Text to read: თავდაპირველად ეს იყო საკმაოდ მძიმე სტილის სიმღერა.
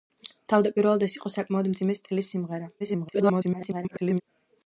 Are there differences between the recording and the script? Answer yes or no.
yes